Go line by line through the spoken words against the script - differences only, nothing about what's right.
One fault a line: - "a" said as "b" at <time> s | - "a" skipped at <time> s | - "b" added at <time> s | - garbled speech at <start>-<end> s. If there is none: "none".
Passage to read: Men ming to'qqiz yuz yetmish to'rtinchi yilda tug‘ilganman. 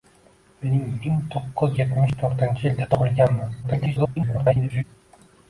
- "yuz" skipped at 1.8 s
- garbled speech at 3.6-4.8 s